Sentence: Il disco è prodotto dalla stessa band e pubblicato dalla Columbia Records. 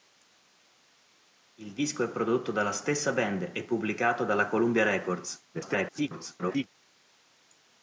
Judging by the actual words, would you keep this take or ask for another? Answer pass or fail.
fail